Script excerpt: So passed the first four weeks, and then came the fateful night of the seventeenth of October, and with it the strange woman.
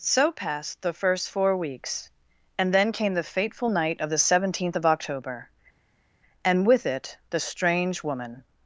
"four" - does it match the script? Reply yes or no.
yes